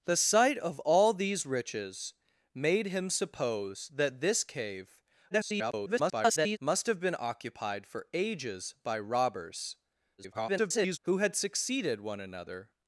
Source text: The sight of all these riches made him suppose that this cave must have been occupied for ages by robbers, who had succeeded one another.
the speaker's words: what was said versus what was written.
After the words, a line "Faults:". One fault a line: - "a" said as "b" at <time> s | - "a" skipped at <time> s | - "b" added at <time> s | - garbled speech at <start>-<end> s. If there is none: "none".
The sight of all these riches made him suppose that this cave [garbled] must have been occupied for ages by robbers, [garbled] who had succeeded one another.
Faults:
- garbled speech at 5.3-6.6 s
- garbled speech at 10.2-11.0 s